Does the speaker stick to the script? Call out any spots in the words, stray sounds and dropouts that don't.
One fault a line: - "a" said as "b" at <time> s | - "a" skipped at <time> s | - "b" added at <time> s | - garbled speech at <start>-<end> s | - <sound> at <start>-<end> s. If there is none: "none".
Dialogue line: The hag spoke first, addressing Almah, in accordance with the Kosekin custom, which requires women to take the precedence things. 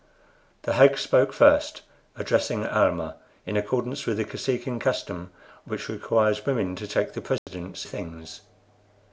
- dropout at 7.4-7.5 s